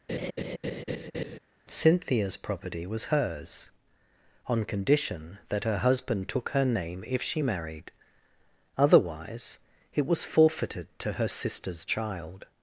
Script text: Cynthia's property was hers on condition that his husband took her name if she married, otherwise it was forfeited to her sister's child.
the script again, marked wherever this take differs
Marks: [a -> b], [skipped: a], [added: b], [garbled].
Cynthia's property was hers on condition that [his -> her] husband took her name if she married, otherwise it was forfeited to her sister's child.